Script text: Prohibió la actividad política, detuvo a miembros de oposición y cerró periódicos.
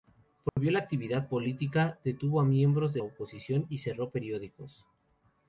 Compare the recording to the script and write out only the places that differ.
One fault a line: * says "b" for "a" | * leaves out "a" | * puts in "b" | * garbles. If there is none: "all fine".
all fine